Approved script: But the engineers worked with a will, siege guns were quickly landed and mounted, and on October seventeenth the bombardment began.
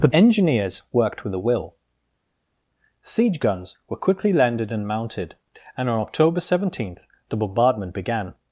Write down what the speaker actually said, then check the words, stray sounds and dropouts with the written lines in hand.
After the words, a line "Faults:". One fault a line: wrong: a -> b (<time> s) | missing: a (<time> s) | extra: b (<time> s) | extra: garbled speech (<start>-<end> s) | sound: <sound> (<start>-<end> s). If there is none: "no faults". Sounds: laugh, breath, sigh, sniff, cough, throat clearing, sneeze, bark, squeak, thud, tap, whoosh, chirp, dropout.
But engineers worked with a will, siege guns were quickly landed and mounted, and on October seventeenth the bombardment began.
Faults:
missing: the (0.1 s)